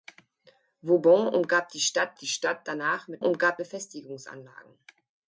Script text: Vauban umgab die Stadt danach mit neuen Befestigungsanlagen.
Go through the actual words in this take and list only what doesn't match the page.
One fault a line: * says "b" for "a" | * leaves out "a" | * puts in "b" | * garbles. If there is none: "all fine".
* puts in "die Stadt"
* says "umgab" for "neuen"